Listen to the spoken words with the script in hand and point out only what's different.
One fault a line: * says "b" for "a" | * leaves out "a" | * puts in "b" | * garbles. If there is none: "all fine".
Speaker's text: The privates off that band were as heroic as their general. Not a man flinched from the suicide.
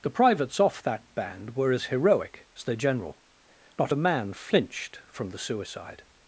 all fine